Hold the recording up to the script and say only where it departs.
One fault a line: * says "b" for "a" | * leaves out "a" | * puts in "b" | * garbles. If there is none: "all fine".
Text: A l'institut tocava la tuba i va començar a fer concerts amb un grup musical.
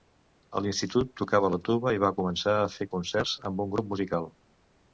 all fine